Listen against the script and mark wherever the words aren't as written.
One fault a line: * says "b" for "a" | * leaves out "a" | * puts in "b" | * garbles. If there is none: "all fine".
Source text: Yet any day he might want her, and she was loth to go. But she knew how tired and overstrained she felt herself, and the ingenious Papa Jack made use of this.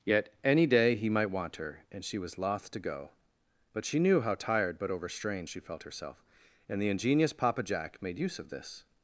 * says "but" for "and"